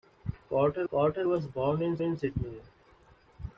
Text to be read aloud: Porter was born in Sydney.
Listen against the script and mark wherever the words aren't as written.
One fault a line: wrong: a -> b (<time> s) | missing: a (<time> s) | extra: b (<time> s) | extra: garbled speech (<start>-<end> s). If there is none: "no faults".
extra: porter (0.9 s)
extra: in (2.0 s)